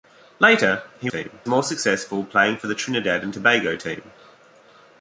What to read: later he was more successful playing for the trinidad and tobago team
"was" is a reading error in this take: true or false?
true